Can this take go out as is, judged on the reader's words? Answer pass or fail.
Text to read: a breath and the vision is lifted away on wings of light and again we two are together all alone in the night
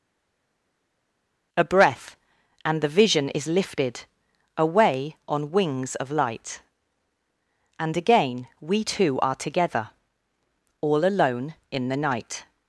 pass